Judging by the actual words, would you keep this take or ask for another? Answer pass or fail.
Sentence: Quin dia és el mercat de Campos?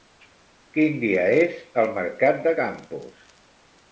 pass